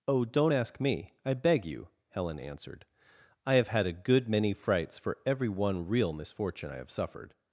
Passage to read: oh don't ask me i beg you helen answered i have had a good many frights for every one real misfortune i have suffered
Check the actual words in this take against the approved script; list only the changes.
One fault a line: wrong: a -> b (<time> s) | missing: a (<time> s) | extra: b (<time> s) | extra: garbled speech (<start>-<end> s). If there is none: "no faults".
no faults